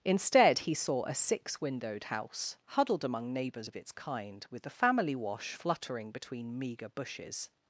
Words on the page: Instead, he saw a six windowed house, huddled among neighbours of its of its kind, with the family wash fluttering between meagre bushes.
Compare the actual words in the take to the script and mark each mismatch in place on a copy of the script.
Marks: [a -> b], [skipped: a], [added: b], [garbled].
Instead, he saw a six windowed house, huddled among neighbours of its [skipped: of its] kind, with the family wash fluttering between meagre bushes.